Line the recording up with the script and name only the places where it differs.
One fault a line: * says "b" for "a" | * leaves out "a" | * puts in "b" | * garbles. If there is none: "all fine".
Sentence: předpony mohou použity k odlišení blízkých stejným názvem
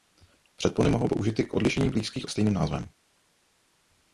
all fine